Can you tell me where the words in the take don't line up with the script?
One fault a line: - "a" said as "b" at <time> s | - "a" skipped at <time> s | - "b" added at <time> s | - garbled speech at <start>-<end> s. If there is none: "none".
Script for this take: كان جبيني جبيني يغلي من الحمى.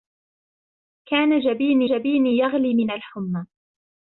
none